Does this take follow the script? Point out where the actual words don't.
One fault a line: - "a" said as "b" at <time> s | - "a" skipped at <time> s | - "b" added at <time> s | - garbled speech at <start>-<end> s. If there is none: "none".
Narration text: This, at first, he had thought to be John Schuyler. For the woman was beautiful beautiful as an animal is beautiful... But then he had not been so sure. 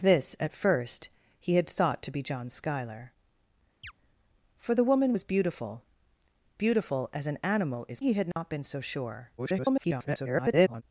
- "beautiful But then" skipped at 8.0 s
- garbled speech at 9.4-10.8 s